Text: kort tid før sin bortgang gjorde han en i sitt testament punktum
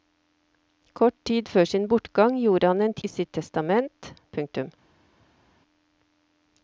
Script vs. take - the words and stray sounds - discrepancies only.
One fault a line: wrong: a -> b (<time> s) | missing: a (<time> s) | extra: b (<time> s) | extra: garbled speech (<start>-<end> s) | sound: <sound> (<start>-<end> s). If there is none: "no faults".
no faults